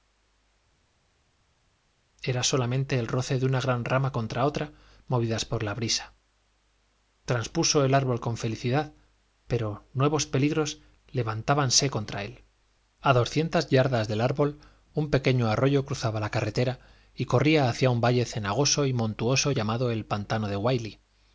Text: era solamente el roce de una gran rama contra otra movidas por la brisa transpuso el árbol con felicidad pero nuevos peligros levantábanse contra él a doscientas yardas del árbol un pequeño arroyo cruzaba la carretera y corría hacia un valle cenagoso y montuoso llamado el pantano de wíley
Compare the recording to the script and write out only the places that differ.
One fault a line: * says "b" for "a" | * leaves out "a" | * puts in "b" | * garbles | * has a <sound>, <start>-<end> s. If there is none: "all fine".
all fine